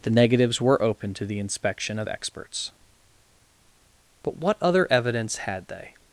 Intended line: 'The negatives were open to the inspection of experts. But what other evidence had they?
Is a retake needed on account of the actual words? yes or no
no